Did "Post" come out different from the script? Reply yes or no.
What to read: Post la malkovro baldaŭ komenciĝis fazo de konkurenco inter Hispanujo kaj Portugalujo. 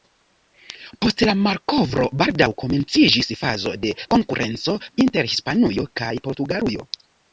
no